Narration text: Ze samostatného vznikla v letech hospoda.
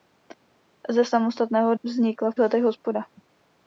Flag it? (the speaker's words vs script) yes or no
no